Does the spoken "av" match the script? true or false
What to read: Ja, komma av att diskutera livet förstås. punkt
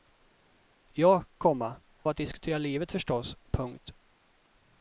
false